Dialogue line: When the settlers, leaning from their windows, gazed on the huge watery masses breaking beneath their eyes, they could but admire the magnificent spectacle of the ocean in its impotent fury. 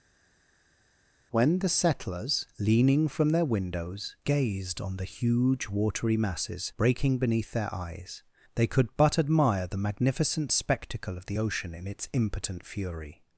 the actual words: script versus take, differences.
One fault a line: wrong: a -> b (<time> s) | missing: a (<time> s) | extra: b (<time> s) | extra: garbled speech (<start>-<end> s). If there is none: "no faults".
no faults